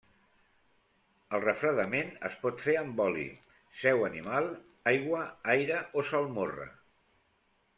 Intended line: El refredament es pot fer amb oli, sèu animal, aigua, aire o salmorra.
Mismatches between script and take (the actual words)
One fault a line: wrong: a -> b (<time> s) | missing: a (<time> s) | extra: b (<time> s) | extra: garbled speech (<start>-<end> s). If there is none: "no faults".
no faults